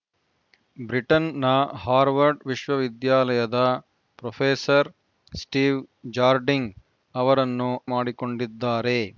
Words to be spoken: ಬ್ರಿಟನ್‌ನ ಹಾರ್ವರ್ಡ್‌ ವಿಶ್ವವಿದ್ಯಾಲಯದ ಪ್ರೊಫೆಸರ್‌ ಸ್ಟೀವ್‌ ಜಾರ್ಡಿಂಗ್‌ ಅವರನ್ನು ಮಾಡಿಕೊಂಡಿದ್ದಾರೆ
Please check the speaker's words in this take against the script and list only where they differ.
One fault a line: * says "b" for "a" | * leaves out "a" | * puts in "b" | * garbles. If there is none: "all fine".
all fine